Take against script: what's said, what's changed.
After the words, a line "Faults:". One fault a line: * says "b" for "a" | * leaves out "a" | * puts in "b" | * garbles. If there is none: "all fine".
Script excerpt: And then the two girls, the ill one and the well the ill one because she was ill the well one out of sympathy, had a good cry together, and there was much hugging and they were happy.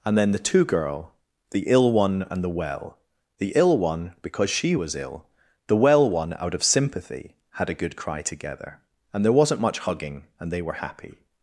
And then the two girl, the ill one and the well the ill one because she was ill the well one out of sympathy, had a good cry together, and there wasn't much hugging and they were happy.
Faults:
* says "girl" for "girls"
* says "wasn't" for "was"